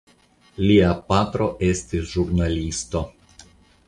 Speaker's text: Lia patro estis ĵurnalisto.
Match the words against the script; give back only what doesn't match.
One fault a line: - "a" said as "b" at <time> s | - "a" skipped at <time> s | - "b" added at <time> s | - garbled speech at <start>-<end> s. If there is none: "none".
none